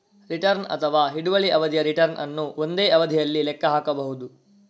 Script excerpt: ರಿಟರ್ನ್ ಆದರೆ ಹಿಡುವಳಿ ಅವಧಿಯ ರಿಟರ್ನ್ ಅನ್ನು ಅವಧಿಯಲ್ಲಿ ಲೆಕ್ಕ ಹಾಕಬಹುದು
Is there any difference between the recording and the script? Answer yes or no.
yes